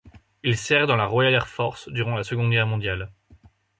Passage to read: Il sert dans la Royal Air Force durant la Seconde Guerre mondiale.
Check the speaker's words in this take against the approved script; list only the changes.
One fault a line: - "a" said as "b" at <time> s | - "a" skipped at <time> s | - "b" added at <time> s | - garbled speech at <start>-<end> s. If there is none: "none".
none